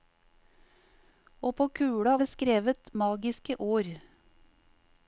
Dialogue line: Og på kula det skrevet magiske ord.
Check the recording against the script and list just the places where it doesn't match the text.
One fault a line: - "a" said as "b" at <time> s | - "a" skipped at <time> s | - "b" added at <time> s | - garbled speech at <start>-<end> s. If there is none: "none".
none